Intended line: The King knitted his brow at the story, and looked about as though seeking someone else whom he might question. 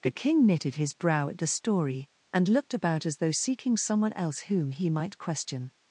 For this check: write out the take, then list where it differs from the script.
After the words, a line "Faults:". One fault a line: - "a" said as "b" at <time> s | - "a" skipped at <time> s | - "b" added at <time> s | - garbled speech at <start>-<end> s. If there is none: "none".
The King knitted his brow at the story, and looked about as though seeking someone else whom he might question.
Faults:
none